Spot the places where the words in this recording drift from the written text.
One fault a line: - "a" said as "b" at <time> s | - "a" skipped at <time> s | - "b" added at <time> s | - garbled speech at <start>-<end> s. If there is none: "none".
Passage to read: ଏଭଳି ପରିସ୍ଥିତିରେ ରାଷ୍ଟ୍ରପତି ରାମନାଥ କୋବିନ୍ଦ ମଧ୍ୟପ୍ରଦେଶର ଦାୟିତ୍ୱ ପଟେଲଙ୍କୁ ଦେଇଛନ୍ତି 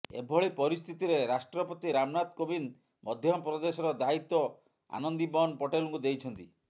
- "ଆନନ୍ଦିବନ୍" added at 5.0 s